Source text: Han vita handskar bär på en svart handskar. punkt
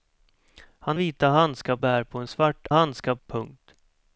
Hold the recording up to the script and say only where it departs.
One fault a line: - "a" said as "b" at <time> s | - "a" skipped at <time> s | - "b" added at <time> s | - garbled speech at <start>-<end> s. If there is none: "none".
none